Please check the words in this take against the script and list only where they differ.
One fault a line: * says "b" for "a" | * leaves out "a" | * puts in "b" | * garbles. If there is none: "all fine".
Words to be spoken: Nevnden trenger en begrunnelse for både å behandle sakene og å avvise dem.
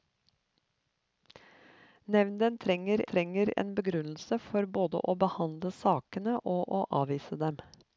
* puts in "trenger"